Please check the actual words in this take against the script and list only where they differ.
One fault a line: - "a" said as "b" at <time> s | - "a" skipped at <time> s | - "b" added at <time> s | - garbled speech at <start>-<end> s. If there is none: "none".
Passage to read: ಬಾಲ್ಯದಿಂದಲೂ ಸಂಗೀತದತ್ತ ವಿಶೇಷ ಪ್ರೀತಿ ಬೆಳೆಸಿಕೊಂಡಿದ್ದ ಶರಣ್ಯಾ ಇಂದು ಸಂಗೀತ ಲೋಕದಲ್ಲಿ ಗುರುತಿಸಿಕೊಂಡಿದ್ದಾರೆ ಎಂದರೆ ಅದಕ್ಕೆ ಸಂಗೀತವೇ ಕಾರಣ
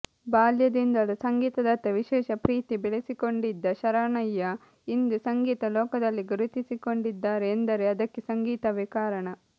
none